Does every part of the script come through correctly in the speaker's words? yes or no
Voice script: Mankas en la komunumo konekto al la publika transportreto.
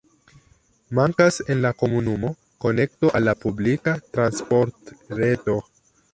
yes